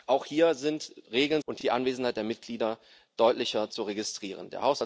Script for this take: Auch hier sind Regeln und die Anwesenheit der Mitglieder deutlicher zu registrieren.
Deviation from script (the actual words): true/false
false